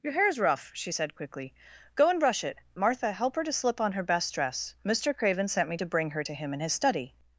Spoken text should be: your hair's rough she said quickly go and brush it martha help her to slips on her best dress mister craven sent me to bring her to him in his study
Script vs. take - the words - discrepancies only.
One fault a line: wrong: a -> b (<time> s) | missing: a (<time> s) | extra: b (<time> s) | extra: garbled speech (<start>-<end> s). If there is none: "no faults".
wrong: slips -> slip (3.5 s)